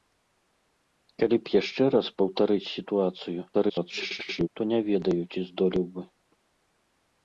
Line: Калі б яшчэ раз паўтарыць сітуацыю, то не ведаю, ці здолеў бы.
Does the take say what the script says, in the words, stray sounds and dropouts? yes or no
no